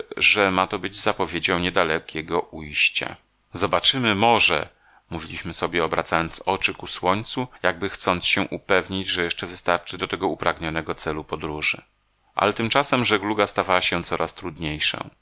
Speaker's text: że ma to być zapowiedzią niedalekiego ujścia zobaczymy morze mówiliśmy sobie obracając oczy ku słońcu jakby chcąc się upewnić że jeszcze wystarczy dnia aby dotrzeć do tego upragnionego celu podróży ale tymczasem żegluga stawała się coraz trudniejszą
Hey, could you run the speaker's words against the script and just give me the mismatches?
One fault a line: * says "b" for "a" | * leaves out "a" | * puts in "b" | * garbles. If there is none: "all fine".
* leaves out "dnia aby dotrzeć"